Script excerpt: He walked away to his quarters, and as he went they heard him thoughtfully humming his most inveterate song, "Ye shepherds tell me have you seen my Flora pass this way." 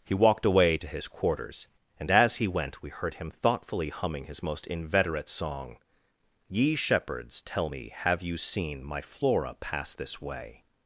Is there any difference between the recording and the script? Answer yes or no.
yes